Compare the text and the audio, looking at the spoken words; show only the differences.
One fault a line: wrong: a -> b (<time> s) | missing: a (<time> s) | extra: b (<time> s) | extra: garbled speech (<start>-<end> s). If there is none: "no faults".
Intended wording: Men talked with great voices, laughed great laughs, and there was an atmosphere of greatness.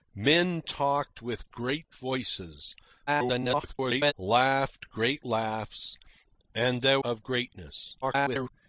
extra: garbled speech (3.1-4.1 s)
missing: was an atmosphere (7.0 s)
extra: garbled speech (8.0-8.5 s)